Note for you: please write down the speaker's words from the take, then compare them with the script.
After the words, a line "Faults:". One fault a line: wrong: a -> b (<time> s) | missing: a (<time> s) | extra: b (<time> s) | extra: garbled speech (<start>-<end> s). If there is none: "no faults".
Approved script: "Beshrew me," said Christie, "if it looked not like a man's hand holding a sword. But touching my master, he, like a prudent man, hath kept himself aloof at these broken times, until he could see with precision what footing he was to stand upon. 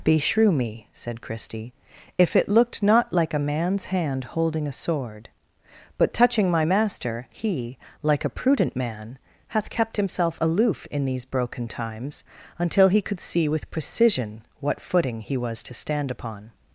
"Beshrew me," said Christie, "if it looked not like a man's hand holding a sword. But touching my master, he, like a prudent man, hath kept himself aloof in these broken times, until he could see with precision what footing he was to stand upon.
Faults:
wrong: at -> in (10.9 s)